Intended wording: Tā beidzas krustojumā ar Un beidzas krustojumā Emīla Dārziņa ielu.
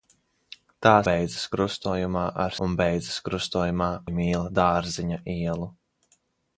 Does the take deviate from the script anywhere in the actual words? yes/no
no